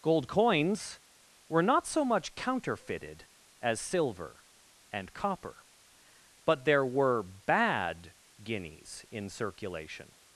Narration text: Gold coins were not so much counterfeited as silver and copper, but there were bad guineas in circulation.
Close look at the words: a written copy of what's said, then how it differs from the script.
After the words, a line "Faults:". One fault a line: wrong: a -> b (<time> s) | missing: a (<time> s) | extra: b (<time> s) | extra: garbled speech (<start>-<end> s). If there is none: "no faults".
Gold coins were not so much counterfeited as silver and copper, but there were bad guineas in circulation.
Faults:
no faults